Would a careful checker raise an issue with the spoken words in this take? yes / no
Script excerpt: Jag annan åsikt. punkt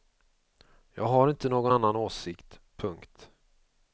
yes